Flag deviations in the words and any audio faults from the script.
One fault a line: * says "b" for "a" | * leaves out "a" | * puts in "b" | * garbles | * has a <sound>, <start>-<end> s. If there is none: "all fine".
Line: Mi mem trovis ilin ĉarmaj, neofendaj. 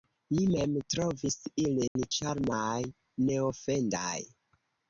* has a dropout, 1.9-2.0 s